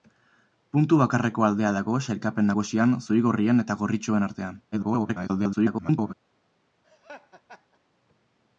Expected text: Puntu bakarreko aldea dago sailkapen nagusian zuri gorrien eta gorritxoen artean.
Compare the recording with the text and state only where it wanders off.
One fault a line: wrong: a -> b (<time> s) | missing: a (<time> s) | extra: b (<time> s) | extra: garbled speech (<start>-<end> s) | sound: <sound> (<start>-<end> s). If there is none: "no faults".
extra: garbled speech (4.7-6.1 s)
sound: laugh (6.8-7.8 s)